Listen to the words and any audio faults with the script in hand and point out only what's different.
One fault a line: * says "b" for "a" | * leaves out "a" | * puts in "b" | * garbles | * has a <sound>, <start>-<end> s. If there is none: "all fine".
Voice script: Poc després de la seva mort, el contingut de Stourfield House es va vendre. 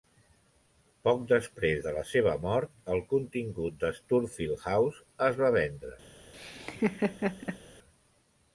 * has a laugh, 6.3-7.6 s